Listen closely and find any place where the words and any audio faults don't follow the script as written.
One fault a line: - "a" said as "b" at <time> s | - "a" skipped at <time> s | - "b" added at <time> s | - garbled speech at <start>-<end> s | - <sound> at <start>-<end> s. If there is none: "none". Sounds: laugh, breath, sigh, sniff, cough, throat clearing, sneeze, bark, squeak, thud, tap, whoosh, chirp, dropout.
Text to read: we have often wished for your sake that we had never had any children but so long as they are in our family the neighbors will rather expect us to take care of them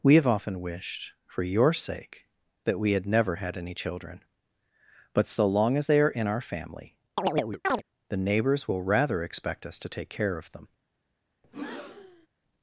- chirp at 7.2-7.8 s
- breath at 11.4-12.3 s